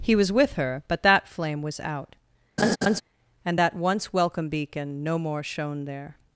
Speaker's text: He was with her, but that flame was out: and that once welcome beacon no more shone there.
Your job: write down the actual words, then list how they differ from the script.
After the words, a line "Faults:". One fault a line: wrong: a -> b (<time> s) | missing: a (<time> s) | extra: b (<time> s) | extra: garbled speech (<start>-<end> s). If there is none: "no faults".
He was with her, but that flame was out: and that once welcome beacon no more shone there.
Faults:
no faults